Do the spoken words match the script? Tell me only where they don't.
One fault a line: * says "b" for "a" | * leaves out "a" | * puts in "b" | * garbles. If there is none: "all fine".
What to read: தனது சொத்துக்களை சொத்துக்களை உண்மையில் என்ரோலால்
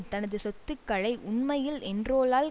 * leaves out "சொத்துக்களை"